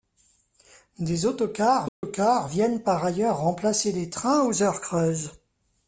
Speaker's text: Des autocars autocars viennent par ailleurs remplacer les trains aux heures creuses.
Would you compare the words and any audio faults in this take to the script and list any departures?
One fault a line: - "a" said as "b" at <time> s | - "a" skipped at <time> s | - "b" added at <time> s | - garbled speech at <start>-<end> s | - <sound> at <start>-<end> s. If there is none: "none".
- dropout at 1.9-2.0 s